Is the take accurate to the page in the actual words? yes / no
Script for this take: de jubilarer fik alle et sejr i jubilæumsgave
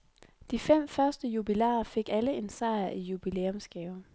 no